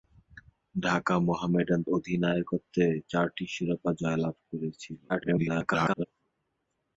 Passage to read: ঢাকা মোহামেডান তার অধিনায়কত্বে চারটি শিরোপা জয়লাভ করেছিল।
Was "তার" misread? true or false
true